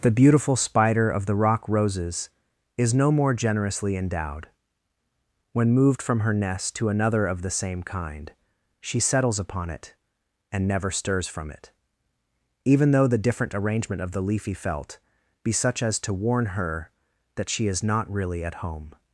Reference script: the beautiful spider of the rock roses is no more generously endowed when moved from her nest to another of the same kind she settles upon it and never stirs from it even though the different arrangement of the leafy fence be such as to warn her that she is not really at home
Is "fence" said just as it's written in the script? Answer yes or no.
no